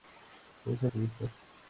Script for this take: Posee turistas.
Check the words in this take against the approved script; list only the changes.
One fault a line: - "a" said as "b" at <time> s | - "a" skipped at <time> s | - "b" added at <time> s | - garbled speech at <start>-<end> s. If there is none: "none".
none